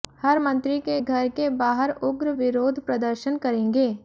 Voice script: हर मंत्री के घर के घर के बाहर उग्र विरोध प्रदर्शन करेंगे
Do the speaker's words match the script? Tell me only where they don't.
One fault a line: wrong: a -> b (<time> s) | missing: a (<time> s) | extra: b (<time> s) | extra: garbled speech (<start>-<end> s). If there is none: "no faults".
missing: घर के (1.5 s)